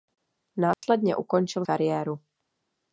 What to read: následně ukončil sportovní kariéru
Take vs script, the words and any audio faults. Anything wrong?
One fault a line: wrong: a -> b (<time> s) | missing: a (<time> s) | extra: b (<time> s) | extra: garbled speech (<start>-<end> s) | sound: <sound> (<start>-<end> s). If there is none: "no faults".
sound: dropout (0.7-0.8 s)
missing: sportovní (1.6 s)